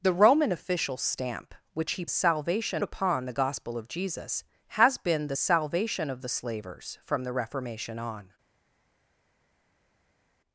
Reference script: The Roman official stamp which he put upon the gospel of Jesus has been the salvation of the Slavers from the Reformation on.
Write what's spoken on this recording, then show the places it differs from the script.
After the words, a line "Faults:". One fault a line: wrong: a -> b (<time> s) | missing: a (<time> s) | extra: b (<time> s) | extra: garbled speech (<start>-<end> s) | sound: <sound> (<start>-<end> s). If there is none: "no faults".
The Roman official stamp which he salvation upon the gospel of Jesus has been the salvation of the Slavers from the Reformation on.
Faults:
wrong: put -> salvation (2.1 s)